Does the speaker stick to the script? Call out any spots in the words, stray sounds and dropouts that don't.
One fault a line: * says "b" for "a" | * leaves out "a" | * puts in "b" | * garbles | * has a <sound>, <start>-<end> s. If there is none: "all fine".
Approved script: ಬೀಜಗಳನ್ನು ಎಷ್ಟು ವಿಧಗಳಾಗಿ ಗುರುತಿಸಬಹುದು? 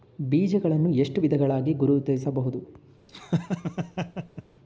* has a laugh, 3.1-4.4 s